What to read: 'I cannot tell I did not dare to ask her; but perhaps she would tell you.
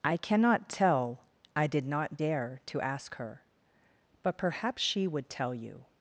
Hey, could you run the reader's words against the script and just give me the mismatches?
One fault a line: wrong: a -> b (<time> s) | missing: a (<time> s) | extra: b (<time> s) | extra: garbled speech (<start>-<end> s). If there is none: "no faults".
no faults